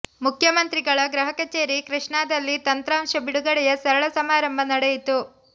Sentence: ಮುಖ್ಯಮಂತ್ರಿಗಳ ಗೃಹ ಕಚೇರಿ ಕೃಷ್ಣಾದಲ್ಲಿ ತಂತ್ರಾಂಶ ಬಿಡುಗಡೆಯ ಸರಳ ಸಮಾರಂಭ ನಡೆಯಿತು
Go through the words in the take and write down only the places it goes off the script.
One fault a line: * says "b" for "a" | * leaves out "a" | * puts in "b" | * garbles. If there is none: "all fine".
all fine